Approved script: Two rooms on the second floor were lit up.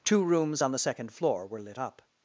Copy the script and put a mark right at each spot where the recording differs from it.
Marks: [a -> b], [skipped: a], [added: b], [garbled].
Two rooms on the second floor were lit up.